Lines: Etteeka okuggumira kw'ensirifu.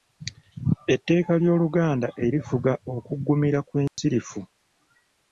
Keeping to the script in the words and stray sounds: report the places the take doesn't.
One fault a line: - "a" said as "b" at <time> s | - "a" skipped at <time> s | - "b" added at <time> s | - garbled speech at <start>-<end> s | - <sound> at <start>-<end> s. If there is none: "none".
- "ly'Oluganda erifuga" added at 1.4 s
- dropout at 3.9-4.0 s